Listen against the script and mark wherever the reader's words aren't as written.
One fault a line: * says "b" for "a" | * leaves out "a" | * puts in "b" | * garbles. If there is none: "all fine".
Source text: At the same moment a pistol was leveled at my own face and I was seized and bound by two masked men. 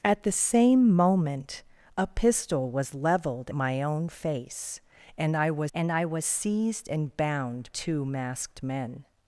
* leaves out "at"
* puts in "and I was"
* leaves out "by"